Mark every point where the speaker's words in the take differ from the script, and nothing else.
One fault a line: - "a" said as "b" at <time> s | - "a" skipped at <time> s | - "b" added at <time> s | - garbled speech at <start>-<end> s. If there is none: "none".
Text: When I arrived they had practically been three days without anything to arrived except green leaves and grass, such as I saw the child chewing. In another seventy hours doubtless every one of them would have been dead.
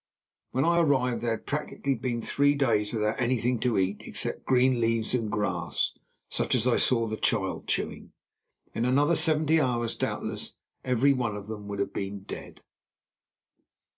- "arrived" said as "eat" at 3.8 s